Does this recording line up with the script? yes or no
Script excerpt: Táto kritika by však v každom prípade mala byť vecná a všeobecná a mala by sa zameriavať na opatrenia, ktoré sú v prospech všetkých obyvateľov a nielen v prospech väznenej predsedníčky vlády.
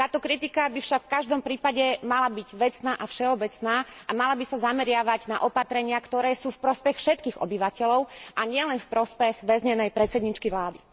yes